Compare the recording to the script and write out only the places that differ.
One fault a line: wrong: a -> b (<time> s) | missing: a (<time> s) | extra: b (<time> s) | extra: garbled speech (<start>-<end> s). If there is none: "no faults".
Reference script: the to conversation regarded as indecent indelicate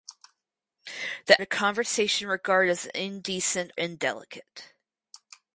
no faults